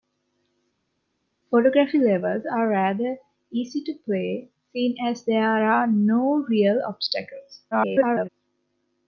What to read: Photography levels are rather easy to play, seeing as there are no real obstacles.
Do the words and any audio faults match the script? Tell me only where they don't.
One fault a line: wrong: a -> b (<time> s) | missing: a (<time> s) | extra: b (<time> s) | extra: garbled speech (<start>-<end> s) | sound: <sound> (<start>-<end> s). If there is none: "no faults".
extra: garbled speech (7.7-8.3 s)